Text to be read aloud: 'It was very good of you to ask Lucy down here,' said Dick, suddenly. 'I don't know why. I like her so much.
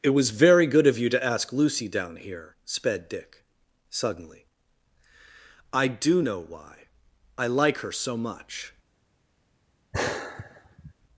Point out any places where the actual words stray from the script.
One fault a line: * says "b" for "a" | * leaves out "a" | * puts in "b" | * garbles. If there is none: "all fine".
* says "sped" for "said"
* says "do" for "don't"